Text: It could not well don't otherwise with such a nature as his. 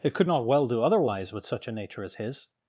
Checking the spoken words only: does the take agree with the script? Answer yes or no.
no